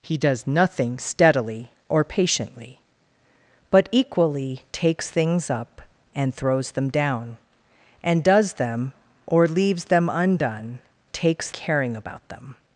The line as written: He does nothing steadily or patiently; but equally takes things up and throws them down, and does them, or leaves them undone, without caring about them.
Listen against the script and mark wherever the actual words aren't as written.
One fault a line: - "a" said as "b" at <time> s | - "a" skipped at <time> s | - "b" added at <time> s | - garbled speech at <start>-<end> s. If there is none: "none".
- "without" said as "takes" at 11.1 s